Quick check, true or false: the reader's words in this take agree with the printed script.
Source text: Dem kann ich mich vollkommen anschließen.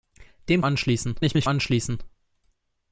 false